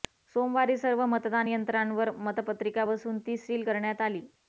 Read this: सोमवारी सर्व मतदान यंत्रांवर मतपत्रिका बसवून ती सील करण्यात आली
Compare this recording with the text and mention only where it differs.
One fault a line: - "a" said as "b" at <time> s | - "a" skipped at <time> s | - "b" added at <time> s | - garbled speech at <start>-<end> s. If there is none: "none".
none